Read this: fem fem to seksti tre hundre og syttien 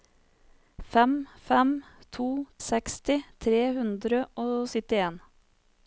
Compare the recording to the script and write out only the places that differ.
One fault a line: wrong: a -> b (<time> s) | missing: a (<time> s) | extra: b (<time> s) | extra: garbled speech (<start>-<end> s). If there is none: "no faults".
no faults